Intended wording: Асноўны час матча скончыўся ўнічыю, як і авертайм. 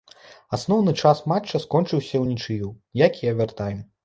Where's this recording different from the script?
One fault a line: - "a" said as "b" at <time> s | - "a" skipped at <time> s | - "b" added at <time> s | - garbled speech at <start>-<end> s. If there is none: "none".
none